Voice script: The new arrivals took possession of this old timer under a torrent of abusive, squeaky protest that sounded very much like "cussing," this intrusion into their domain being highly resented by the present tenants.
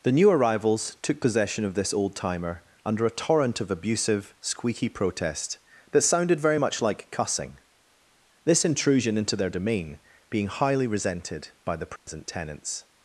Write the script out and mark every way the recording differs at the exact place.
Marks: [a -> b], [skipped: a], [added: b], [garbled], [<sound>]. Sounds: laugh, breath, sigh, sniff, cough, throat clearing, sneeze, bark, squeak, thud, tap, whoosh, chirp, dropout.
The new arrivals took possession of this old timer under a torrent of abusive, squeaky protest that sounded very much like "cussing," this intrusion into their domain being highly resented by the present [dropout] tenants.